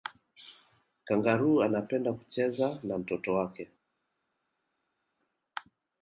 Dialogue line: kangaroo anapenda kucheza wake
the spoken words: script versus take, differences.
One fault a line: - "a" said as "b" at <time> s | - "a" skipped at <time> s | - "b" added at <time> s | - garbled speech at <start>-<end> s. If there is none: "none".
- "na mtoto" added at 2.8 s